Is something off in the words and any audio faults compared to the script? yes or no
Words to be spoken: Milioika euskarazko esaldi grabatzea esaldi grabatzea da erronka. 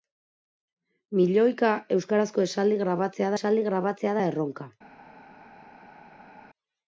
no